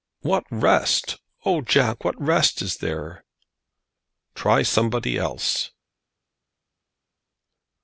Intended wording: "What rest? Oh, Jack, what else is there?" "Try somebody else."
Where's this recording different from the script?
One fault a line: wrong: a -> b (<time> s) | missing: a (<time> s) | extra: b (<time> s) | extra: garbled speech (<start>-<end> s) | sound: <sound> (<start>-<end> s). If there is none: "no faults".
wrong: else -> rest (2.2 s)